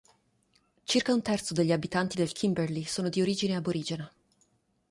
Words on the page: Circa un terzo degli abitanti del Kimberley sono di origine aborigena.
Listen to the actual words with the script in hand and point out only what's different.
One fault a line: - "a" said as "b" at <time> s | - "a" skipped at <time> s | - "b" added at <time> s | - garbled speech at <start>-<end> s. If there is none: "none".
none